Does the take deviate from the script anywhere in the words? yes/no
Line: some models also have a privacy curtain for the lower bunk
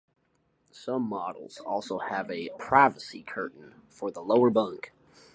no